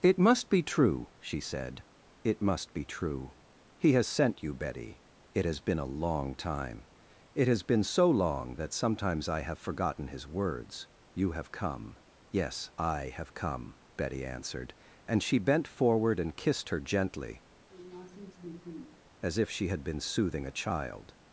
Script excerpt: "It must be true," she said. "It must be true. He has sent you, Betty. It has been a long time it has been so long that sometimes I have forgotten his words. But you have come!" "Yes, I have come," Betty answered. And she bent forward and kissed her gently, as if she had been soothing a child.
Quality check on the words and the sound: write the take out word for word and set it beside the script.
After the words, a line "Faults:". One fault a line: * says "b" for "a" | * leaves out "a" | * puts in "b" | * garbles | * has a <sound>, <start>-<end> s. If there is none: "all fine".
"It must be true," she said. "It must be true. He has sent you, Betty. It has been a long time it has been so long that sometimes I have forgotten his words. you have come!" "Yes, I have come," Betty answered. And she bent forward and kissed her gently, as if she had been soothing a child.
Faults:
* leaves out "But"
* has a sniff, 17.7-19.0 s